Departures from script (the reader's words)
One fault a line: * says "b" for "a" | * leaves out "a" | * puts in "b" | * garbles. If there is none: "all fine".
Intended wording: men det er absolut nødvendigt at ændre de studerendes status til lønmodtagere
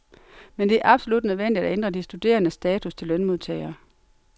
all fine